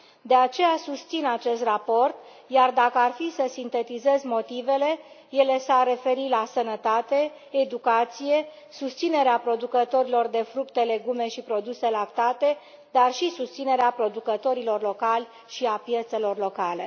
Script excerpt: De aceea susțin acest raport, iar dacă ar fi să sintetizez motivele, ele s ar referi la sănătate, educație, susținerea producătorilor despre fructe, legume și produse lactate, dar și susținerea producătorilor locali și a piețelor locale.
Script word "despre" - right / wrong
wrong